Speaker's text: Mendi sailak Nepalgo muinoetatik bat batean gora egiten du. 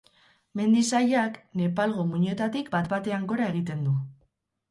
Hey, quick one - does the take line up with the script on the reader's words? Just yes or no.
yes